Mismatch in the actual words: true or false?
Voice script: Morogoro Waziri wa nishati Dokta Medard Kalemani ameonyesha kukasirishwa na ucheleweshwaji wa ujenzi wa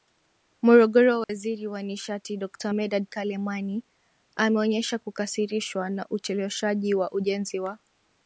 false